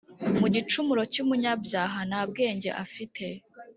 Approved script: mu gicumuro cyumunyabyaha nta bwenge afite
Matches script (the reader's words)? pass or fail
pass